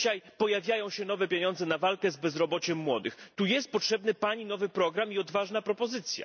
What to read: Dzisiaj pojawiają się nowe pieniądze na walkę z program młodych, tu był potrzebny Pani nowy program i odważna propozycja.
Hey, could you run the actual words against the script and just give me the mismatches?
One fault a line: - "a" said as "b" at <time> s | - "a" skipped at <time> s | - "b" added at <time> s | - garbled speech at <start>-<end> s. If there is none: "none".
- "program" said as "bezrobociem" at 2.2 s
- "był" said as "jest" at 3.4 s